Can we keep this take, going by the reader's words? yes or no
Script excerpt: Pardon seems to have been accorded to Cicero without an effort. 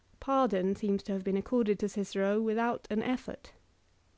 yes